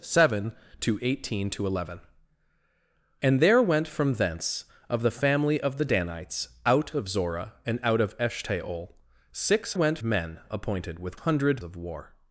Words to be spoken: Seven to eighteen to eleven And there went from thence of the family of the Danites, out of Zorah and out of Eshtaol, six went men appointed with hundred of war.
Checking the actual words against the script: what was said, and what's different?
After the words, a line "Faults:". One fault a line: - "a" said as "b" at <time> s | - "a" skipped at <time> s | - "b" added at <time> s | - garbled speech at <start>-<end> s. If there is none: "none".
Seven to eighteen to eleven And there went from thence of the family of the Danites, out of Zorah and out of Eshtaol, six went men appointed with hundred of war.
Faults:
none